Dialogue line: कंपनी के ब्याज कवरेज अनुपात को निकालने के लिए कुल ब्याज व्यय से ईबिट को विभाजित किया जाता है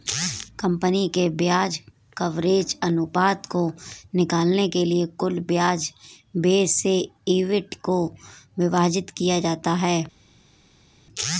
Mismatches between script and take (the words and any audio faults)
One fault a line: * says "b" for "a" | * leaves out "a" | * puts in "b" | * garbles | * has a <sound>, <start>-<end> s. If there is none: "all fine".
all fine